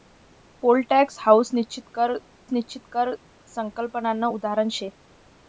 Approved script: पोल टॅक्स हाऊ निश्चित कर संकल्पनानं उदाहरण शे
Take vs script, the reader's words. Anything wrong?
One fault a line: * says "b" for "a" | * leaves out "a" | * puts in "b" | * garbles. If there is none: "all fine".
* puts in "निश्चित कर"